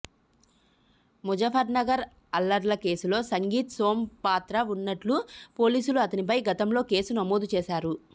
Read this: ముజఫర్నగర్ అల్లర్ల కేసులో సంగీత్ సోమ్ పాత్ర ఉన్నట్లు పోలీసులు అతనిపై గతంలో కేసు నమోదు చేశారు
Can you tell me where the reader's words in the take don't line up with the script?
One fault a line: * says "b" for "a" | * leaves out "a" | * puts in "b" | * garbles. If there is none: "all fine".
all fine